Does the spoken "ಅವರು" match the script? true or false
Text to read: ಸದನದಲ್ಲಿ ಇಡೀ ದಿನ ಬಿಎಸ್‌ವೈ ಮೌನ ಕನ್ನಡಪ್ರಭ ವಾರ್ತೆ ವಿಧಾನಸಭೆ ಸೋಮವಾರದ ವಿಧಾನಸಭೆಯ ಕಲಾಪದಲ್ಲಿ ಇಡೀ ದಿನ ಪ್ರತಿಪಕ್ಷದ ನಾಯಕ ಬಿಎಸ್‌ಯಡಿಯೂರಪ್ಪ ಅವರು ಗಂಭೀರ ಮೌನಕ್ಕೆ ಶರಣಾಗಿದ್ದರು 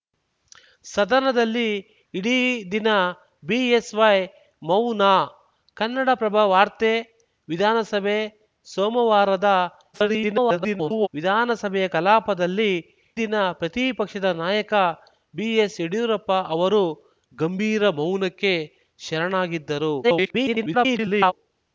true